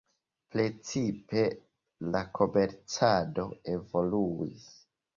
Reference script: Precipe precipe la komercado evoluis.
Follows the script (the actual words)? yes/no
no